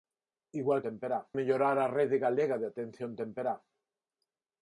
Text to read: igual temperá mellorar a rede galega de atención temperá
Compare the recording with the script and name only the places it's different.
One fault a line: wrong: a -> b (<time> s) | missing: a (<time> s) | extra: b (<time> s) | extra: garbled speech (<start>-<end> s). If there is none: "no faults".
no faults